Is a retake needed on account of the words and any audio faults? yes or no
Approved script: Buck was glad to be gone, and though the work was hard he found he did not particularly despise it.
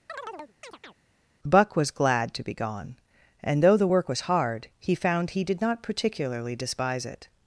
yes